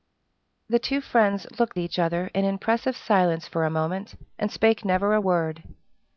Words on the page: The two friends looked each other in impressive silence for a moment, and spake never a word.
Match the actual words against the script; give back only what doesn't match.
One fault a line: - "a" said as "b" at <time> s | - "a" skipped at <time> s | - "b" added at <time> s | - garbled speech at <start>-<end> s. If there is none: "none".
none